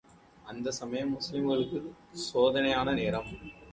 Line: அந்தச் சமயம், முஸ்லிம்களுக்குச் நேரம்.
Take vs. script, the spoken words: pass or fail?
fail